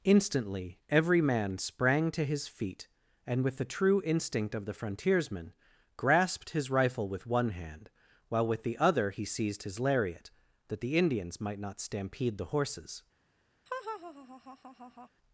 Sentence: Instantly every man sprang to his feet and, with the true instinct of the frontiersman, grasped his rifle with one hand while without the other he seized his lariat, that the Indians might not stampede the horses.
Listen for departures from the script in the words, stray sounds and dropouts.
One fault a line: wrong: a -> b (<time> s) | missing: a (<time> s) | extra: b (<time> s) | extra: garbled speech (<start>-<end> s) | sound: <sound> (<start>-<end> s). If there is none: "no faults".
wrong: without -> with (8.5 s)
sound: laugh (13.7-15.1 s)